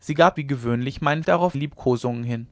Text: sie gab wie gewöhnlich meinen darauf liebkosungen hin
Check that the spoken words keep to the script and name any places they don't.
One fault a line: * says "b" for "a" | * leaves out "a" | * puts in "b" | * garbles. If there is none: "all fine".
all fine